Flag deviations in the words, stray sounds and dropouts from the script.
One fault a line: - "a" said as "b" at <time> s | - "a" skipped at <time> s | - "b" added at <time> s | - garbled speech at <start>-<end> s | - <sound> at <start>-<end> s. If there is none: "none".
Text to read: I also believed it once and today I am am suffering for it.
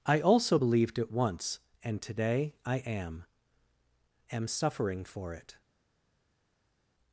none